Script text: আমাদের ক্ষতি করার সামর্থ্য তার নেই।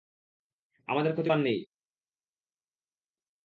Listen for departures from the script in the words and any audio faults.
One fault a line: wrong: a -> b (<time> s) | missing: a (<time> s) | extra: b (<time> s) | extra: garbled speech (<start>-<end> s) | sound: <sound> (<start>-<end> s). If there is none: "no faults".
missing: করার সামর্থ্য (1.3 s)